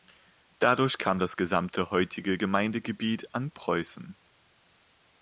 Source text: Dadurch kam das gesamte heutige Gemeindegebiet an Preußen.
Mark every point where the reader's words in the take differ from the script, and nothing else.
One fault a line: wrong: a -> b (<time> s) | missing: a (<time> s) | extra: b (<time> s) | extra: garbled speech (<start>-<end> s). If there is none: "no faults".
no faults